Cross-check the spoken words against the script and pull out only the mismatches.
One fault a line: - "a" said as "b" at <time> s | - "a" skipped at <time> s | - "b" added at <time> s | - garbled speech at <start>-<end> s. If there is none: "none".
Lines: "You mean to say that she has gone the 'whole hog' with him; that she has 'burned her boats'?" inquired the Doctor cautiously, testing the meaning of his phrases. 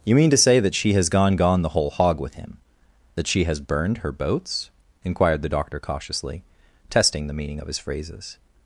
- "gone" added at 1.4 s